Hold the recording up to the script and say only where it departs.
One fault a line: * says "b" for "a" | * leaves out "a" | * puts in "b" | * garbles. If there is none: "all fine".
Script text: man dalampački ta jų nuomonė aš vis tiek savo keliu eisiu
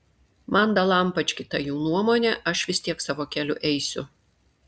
all fine